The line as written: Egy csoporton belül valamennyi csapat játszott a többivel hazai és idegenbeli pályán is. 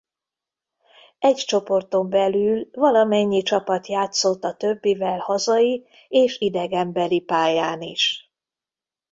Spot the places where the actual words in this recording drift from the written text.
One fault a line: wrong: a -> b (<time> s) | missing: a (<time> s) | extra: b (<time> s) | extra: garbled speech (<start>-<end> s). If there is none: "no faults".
no faults